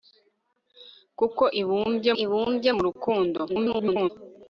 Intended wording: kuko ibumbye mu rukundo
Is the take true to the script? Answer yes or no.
no